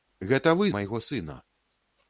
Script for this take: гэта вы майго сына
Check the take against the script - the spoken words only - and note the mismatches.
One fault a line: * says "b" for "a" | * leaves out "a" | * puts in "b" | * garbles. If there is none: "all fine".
all fine